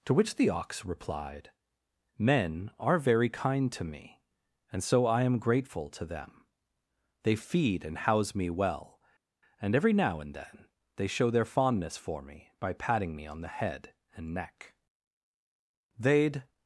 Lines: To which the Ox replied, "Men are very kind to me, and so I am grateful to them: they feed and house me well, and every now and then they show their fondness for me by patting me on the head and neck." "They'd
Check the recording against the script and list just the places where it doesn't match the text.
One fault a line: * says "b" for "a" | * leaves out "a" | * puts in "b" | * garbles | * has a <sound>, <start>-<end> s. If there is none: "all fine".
all fine